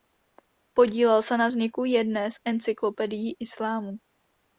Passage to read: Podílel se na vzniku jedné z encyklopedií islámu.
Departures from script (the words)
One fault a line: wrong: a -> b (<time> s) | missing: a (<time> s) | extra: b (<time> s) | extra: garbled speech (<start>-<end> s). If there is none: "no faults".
no faults